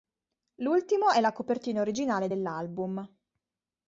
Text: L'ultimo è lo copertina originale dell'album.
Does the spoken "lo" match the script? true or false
false